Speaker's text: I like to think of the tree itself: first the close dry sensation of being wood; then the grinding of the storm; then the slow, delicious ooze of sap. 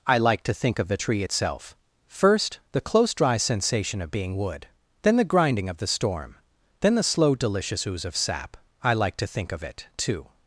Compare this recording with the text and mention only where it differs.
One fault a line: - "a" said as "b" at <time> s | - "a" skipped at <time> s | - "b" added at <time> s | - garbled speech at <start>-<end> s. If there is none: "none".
- "I like to think of it too" added at 8.8 s